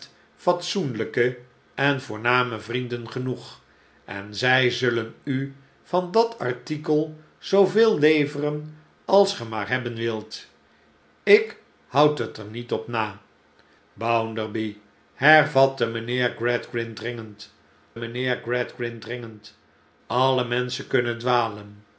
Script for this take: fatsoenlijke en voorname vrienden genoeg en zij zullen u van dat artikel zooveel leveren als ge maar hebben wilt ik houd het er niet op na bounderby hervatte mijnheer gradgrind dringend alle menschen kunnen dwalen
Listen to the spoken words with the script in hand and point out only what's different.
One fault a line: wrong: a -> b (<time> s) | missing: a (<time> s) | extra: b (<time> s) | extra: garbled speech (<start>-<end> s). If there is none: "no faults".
extra: mijnheer gradgrind dringend (17.9 s)